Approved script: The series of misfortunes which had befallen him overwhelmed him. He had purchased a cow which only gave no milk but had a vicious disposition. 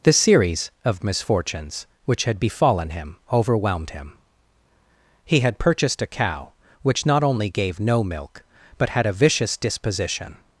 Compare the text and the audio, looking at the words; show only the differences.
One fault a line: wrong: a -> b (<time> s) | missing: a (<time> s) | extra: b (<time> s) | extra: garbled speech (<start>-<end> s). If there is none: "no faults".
extra: not (7.0 s)